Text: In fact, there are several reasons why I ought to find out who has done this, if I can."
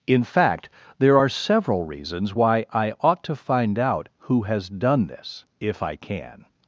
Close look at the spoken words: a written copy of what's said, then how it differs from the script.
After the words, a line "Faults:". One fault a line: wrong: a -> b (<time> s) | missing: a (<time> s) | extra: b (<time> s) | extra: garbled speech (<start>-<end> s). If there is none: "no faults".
In fact, there are several reasons why I ought to find out who has done this, if I can."
Faults:
no faults